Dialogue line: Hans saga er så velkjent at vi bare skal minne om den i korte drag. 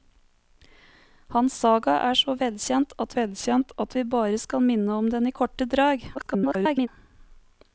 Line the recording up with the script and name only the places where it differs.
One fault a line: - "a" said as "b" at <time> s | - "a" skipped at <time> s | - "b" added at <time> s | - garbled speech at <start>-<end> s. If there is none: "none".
- "velkjent at" added at 3.2 s
- garbled speech at 6.1-6.9 s